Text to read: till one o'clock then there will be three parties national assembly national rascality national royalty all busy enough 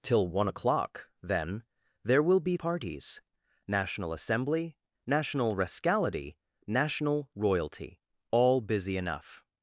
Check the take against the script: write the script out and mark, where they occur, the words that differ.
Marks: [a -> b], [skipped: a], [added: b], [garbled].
till one o'clock then there will be [skipped: three] parties national assembly national rascality national royalty all busy enough